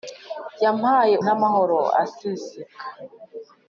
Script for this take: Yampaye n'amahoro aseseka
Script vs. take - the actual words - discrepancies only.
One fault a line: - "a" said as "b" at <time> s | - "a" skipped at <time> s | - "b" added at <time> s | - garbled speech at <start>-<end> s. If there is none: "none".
none